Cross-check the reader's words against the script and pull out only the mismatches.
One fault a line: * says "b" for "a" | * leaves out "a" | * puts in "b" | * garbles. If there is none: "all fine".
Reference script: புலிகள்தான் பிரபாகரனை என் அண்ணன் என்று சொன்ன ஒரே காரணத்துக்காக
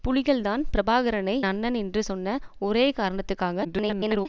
* leaves out "என்"
* garbles